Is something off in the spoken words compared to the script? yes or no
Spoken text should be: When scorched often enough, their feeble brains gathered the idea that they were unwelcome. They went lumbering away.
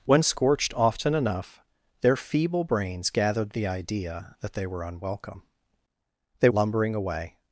yes